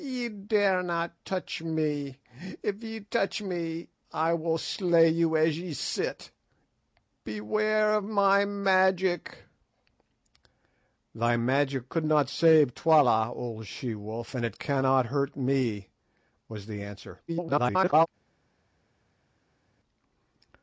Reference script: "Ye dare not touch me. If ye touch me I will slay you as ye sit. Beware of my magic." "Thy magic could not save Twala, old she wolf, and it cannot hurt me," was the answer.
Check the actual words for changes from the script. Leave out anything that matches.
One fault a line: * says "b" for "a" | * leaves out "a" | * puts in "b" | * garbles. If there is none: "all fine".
* garbles